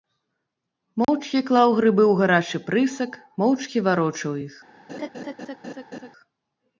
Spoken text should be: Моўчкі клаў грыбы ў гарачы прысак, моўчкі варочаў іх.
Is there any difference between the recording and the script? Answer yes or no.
no